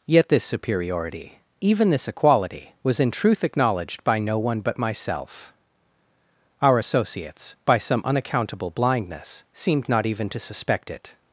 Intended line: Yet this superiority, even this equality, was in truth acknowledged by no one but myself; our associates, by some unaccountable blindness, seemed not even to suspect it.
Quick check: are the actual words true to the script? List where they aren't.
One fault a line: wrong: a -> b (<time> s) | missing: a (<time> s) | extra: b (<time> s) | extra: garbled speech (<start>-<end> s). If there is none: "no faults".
no faults